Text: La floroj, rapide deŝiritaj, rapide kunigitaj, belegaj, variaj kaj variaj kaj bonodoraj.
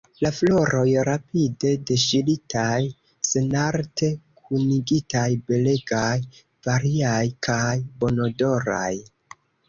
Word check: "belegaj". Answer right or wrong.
right